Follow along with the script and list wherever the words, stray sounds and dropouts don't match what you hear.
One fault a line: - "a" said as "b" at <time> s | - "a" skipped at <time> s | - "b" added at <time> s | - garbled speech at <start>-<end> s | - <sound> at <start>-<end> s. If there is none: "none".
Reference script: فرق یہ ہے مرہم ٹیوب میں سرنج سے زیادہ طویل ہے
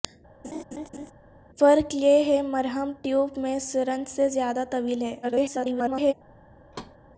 - laugh at 0.4-1.1 s
- garbled speech at 5.2-6.1 s
- thud at 6.7-7.0 s